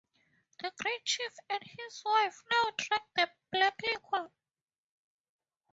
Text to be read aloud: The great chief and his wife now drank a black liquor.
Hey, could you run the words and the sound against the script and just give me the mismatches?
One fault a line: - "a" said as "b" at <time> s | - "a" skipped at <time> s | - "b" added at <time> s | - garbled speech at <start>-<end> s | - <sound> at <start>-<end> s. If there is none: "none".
- "a" said as "the" at 3.2 s